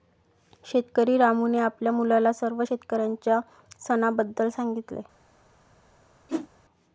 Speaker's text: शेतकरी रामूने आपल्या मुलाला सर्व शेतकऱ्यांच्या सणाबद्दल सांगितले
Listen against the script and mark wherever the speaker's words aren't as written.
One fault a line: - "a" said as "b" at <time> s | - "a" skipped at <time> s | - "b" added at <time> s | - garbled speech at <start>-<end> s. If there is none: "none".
none